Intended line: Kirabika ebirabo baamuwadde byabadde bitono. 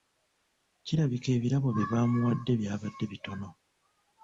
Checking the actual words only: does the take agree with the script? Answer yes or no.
no